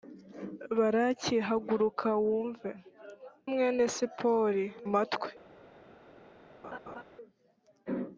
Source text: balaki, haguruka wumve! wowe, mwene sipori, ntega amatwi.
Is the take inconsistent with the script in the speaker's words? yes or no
yes